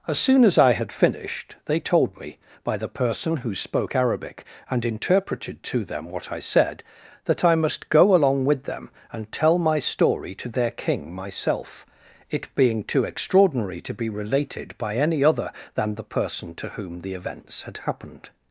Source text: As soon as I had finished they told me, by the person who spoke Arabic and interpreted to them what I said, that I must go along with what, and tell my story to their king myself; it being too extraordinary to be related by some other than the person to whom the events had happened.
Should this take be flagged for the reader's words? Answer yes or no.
yes